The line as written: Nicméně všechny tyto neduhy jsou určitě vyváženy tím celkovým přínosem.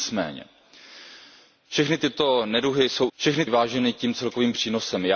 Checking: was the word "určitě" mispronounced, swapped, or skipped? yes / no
yes